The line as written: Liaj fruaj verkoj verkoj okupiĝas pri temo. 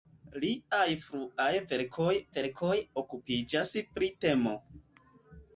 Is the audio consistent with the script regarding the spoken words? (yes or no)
yes